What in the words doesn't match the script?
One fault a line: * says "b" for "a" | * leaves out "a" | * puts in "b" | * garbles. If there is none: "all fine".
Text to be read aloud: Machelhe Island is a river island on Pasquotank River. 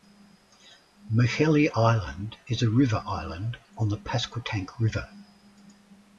* puts in "the"